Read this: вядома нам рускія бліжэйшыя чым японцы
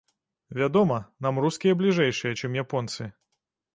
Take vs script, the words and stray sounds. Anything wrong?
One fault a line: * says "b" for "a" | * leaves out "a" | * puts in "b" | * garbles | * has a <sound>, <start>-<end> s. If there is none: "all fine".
all fine